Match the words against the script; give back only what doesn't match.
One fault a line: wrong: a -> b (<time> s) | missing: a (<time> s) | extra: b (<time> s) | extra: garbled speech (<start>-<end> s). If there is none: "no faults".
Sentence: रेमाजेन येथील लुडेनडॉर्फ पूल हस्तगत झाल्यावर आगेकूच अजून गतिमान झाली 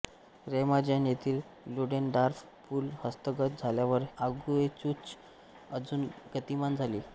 no faults